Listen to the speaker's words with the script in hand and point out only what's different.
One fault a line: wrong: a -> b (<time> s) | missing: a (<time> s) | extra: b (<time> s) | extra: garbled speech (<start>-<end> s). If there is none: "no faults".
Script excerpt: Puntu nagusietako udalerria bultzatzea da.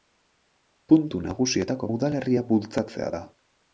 no faults